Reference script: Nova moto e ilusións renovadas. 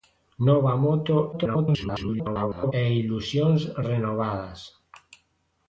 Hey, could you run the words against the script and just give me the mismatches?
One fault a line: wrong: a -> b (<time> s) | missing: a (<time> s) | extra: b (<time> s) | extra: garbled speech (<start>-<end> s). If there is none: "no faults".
extra: garbled speech (1.3-2.7 s)